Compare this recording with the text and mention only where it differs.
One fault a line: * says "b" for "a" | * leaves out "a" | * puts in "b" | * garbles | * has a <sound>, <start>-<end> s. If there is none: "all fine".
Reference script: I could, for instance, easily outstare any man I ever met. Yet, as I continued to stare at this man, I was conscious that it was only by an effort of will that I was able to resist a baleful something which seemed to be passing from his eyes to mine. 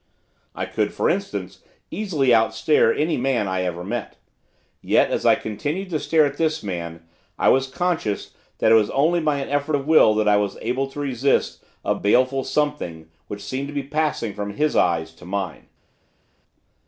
all fine